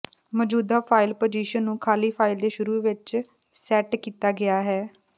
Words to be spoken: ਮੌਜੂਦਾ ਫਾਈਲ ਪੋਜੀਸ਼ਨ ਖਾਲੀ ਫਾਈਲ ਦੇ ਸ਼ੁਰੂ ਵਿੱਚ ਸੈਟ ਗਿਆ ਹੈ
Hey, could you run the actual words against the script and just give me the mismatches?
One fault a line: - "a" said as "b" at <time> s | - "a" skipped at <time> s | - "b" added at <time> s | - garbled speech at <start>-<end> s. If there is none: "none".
- "ਨੂੰ" added at 1.6 s
- "ਕੀਤਾ" added at 4.0 s